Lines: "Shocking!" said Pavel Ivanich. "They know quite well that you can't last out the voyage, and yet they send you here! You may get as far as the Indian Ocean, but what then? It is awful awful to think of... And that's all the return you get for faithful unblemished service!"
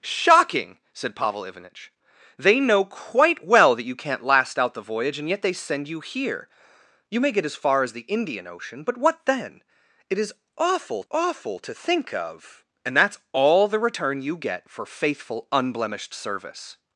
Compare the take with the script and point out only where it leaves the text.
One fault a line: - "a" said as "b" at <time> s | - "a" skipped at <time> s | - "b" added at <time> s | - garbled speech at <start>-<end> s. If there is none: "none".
none